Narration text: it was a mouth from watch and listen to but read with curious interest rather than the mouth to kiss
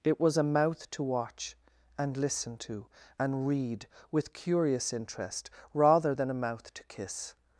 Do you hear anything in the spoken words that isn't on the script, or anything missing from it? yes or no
yes